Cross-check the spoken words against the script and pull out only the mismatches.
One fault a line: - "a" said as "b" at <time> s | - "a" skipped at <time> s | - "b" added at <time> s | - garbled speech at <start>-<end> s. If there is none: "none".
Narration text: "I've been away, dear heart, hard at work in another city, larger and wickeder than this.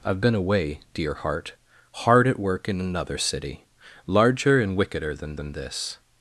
- "than" added at 5.3 s